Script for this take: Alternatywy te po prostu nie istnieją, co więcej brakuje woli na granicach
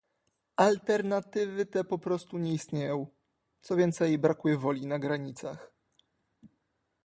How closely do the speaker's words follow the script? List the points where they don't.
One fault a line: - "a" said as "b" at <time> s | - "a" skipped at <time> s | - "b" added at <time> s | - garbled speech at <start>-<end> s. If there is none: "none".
none